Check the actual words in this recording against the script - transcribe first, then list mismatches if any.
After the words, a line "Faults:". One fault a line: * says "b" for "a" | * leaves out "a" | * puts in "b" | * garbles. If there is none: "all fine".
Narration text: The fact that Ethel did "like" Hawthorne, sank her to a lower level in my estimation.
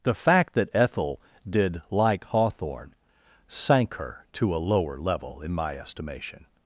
The fact that Ethel did "like" Hawthorne, sank her to a lower level in my estimation.
Faults:
all fine